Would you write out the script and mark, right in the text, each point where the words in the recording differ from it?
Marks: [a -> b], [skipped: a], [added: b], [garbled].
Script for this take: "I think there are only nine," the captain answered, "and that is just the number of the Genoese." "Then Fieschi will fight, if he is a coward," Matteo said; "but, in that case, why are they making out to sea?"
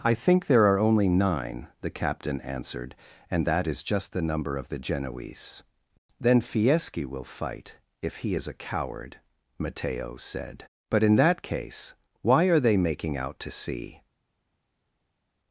"I think there are only nine," the captain answered, "and that is just the number of the Genoese." "Then Fieschi will fight, if he is a coward," Matteo said; "but, in that case, why are they making out to sea?"